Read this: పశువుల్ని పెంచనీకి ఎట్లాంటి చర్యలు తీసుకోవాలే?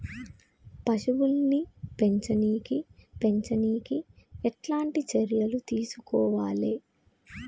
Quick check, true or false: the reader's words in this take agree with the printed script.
false